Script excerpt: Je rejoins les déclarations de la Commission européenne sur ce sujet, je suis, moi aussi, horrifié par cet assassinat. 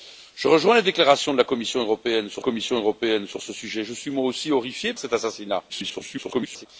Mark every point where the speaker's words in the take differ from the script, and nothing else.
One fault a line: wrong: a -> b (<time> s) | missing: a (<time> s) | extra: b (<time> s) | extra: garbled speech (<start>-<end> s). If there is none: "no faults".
extra: Commission européenne sur (2.4 s)
missing: par (4.9 s)
extra: garbled speech (5.7-6.7 s)